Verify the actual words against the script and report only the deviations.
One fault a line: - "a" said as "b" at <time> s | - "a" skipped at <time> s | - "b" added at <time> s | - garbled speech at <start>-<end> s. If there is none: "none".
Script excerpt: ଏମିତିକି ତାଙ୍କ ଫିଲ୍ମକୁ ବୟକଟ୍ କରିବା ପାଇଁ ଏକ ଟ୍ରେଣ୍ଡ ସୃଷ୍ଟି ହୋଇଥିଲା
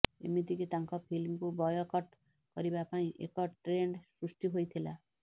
none